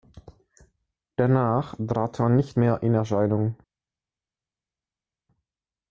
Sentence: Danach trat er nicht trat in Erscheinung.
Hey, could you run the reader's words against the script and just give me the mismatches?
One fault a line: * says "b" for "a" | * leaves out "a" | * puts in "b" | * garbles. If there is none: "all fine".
* says "mehr" for "trat"